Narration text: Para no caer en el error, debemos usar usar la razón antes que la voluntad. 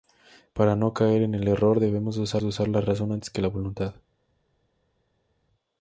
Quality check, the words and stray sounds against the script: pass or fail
pass